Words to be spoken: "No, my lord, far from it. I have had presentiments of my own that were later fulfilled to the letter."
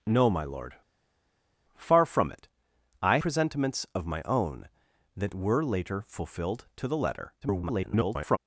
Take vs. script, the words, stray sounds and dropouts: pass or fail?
fail